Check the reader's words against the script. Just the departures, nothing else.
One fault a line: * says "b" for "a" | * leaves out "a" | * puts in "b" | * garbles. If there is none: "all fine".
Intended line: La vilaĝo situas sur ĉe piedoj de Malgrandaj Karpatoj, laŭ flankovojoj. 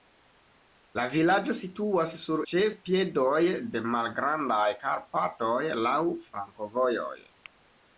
all fine